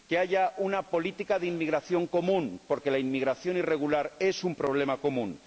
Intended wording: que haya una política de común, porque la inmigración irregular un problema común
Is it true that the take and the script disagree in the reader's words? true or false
true